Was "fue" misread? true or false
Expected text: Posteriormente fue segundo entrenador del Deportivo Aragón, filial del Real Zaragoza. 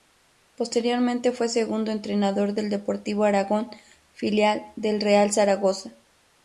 false